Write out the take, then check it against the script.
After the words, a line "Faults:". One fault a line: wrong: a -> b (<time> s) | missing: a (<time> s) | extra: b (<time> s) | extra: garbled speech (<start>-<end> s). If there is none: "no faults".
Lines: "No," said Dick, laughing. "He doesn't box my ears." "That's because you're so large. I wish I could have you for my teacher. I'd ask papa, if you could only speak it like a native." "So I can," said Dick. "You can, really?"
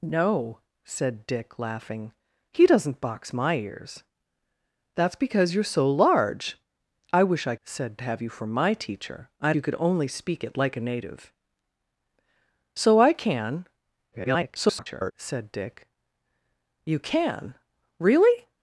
"No," said Dick, laughing. "He doesn't box my ears." "That's because you're so large. I wish I said have you for my teacher. I'd you could only speak it like a native." "So I can," [garbled] said Dick. "You can, really?"
Faults:
wrong: could -> said (7.6 s)
missing: ask papa if (9.6 s)
extra: garbled speech (14.1-15.1 s)